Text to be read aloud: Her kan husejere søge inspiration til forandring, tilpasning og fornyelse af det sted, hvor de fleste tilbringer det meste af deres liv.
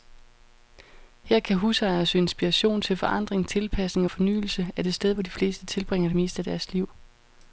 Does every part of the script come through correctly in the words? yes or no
yes